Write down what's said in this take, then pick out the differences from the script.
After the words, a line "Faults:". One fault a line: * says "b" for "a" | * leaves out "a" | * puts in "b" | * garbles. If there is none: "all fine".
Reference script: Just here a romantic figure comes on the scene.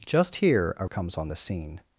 Just here a comes on the scene.
Faults:
* leaves out "romantic figure"